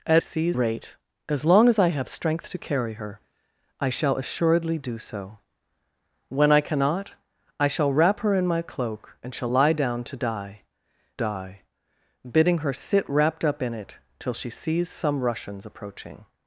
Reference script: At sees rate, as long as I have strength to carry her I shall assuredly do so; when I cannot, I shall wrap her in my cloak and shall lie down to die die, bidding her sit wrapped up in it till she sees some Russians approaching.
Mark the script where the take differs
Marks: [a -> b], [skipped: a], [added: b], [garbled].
At sees rate, as long as I have strength to carry her I shall assuredly do so; when I cannot, I shall wrap her in my cloak and shall lie down to die die, bidding her sit wrapped up in it till she sees some Russians approaching.